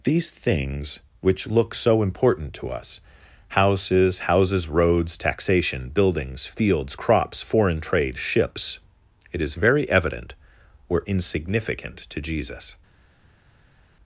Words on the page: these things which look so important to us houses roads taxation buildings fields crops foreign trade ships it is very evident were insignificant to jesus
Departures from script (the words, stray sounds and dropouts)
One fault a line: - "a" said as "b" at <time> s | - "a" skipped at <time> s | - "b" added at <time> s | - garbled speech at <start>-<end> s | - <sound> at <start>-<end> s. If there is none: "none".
- "houses" added at 4.2 s